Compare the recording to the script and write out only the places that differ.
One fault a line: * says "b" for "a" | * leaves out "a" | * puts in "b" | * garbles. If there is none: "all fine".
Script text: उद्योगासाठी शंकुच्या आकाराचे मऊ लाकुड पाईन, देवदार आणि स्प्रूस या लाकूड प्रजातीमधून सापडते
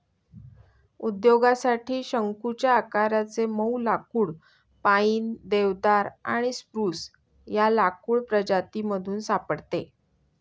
all fine